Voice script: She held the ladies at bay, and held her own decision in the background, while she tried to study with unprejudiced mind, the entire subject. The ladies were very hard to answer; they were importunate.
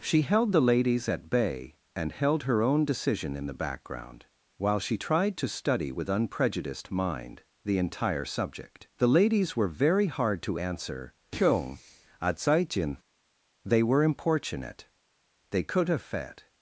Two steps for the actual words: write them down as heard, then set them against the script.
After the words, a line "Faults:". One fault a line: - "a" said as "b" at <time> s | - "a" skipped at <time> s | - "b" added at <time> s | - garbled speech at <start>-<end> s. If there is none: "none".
She held the ladies at bay, and held her own decision in the background, while she tried to study with unprejudiced mind, the entire subject. The ladies were very hard to answer; they were importunate. they could have fed
Faults:
- "they could have fed" added at 15.5 s